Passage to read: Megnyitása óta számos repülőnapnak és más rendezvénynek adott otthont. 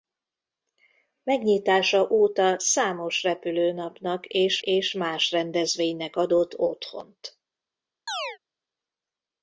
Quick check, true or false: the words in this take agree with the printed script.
false